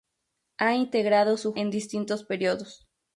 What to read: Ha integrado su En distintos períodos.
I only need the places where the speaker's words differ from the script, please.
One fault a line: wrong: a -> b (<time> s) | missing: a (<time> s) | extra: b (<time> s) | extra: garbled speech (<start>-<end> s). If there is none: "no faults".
no faults